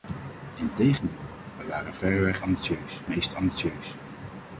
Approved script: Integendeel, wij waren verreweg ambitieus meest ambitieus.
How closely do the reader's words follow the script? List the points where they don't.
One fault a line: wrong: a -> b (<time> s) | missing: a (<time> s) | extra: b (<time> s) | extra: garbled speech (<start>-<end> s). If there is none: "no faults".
no faults